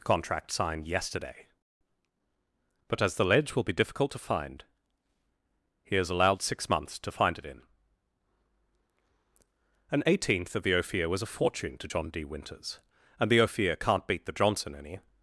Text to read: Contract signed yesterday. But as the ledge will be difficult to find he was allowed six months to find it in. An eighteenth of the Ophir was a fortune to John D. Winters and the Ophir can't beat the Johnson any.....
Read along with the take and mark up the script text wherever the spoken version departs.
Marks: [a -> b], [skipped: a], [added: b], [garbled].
Contract signed yesterday. But as the ledge will be difficult to find he [was -> is] allowed six months to find it in. An eighteenth of the Ophir was a fortune to John D. Winters and the Ophir can't beat the Johnson any.....